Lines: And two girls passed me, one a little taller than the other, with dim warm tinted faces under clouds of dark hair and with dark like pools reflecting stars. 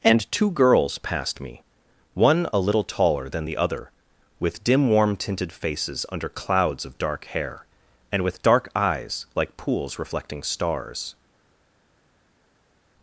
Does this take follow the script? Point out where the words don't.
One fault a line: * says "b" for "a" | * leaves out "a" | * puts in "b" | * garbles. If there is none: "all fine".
* puts in "eyes"